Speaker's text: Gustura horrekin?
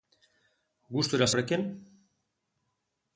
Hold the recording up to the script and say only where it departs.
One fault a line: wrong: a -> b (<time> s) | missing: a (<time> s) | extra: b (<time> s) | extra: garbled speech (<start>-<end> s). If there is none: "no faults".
no faults